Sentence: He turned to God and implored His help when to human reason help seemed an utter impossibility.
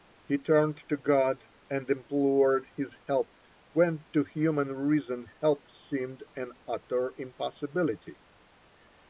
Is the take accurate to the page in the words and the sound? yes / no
yes